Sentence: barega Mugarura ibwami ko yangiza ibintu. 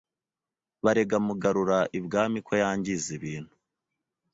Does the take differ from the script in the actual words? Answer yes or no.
no